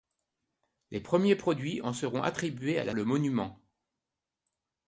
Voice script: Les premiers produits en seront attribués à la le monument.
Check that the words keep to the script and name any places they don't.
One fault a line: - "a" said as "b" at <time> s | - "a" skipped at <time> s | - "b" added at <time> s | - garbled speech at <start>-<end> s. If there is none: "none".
none